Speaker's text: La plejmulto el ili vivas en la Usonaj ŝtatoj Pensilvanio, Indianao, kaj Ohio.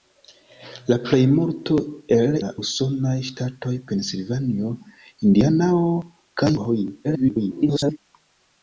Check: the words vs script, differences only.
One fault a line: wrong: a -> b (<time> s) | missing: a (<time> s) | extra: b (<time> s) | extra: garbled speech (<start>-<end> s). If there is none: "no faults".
missing: ili vivas en (2.4 s)
extra: garbled speech (7.0-8.0 s)